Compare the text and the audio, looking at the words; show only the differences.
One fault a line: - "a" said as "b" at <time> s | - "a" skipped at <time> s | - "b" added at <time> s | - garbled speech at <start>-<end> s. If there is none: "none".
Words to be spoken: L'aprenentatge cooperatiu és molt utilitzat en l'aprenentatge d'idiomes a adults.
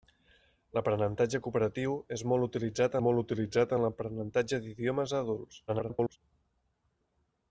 - "molt utilitzat" added at 3.1 s
- garbled speech at 5.7-6.2 s